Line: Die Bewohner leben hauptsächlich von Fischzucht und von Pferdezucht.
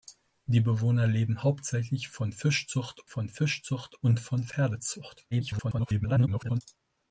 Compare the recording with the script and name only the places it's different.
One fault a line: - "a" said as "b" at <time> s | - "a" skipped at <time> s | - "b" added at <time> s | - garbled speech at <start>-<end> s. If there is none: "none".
- "von Fischzucht" added at 3.1 s
- garbled speech at 5.3-6.6 s